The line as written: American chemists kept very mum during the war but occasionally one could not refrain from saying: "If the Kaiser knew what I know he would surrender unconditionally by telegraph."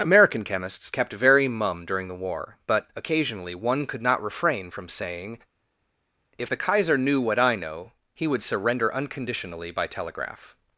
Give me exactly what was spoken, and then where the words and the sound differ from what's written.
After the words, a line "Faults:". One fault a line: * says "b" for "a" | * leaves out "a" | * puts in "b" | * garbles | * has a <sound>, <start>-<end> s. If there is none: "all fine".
American chemists kept very mum during the war but occasionally one could not refrain from saying: "If the Kaiser knew what I know he would surrender unconditionally by telegraph."
Faults:
all fine